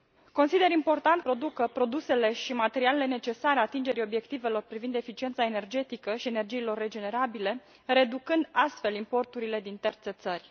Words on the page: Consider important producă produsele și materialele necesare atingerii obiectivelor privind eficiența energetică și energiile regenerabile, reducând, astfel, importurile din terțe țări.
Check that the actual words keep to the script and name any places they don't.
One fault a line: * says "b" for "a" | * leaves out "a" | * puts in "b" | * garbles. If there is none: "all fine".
all fine